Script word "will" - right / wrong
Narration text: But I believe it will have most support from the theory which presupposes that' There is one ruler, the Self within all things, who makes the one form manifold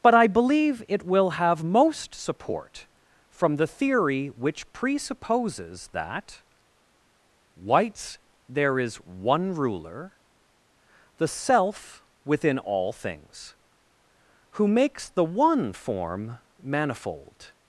right